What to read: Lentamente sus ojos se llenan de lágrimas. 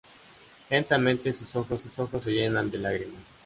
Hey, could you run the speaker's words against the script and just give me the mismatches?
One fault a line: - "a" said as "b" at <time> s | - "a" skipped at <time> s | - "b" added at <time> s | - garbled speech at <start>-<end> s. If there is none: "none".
- "sus ojos" added at 1.8 s